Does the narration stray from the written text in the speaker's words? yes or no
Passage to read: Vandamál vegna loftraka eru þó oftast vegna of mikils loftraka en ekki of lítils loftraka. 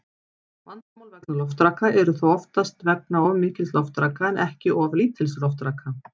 no